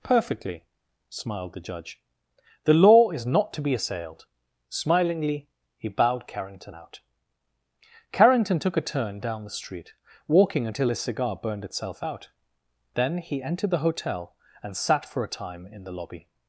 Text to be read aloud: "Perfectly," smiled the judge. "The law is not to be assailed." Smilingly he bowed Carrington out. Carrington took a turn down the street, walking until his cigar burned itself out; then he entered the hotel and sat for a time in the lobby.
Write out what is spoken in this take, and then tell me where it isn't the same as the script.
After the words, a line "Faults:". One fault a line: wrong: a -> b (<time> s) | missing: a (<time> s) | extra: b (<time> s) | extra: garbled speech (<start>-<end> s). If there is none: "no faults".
"Perfectly," smiled the judge. "The law is not to be assailed." Smilingly he bowed Carrington out. Carrington took a turn down the street, walking until his cigar burned itself out; then he entered the hotel and sat for a time in the lobby.
Faults:
no faults